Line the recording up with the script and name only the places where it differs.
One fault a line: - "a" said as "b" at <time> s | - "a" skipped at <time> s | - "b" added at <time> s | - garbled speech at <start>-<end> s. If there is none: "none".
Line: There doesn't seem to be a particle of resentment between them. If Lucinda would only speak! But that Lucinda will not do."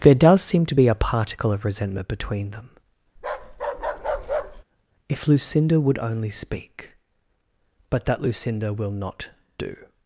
- "doesn't" said as "does" at 0.1 s